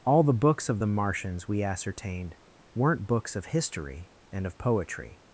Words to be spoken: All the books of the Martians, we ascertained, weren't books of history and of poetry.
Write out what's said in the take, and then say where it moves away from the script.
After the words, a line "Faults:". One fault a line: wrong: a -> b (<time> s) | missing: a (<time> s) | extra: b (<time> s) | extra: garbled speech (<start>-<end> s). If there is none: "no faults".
All the books of the Martians, we ascertained, weren't books of history and of poetry.
Faults:
no faults